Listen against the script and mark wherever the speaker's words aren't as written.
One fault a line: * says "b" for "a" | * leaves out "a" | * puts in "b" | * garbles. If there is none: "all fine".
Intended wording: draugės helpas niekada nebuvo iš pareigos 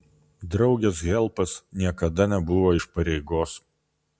all fine